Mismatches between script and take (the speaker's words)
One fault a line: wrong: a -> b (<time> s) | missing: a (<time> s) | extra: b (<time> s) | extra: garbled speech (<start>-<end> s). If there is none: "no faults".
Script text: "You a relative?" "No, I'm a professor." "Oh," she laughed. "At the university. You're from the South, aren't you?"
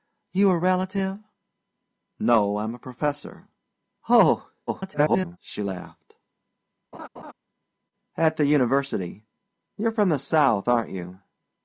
extra: garbled speech (4.7-5.4 s)